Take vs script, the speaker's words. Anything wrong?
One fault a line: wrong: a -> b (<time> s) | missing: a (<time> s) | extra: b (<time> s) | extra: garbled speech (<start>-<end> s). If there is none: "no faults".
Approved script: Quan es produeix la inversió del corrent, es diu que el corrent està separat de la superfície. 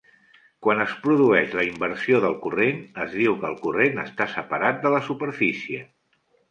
no faults